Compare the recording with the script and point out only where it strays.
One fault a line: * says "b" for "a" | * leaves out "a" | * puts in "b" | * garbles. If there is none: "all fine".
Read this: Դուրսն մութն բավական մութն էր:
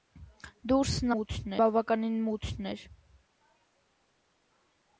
all fine